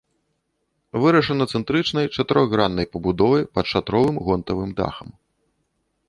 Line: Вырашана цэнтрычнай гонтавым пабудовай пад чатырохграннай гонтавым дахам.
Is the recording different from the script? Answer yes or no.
yes